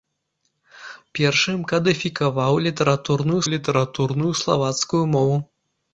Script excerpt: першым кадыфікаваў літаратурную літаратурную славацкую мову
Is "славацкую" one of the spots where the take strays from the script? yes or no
no